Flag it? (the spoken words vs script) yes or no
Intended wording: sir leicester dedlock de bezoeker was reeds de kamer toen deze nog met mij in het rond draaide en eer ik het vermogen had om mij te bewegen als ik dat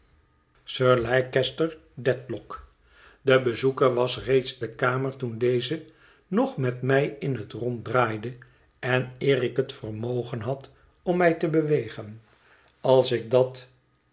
no